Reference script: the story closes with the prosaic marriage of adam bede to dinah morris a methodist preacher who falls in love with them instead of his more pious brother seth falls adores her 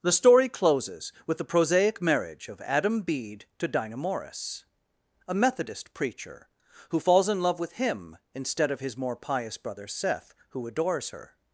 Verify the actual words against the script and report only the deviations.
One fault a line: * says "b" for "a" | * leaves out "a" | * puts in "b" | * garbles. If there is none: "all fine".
* says "him" for "them"
* says "who" for "falls"